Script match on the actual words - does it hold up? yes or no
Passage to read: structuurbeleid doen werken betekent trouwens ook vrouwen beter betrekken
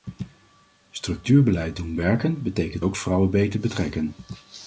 no